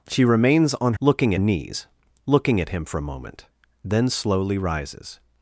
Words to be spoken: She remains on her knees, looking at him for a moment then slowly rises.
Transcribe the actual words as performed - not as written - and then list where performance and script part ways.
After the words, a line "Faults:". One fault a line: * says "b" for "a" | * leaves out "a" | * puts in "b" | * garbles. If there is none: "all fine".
She remains on looking knees, looking at him for a moment then slowly rises.
Faults:
* says "looking" for "her"